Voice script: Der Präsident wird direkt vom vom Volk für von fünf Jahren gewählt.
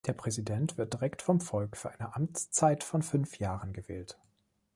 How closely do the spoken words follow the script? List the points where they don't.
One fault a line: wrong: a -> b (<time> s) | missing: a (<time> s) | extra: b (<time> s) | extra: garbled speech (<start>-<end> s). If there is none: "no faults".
missing: vom (1.4 s)
extra: eine Amtszeit (1.9 s)